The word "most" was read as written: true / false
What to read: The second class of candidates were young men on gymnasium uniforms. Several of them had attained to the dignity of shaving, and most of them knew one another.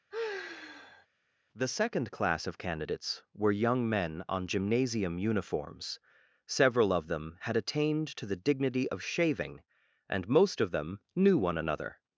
true